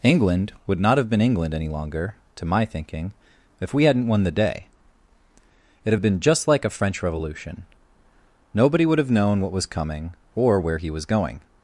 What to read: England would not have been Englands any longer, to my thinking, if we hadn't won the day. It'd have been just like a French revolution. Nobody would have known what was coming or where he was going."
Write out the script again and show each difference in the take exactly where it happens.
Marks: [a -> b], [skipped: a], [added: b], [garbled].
England would not have been [Englands -> England] any longer, to my thinking, if we hadn't won the day. It'd have been just like a French revolution. Nobody would have known what was coming or where he was going."